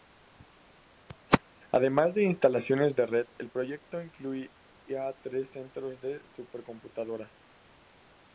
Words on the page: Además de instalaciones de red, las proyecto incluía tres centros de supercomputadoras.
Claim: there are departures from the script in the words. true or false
true